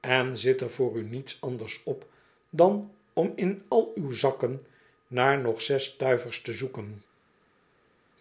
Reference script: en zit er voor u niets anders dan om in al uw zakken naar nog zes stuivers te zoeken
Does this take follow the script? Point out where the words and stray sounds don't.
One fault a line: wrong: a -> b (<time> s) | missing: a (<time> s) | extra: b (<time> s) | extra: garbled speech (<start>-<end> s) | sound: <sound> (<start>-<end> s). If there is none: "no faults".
extra: op (1.8 s)